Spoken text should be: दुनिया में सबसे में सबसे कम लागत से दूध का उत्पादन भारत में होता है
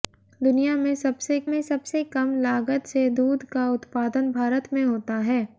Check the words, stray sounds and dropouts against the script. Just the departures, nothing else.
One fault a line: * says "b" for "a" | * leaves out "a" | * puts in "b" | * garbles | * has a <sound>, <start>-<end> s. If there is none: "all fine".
all fine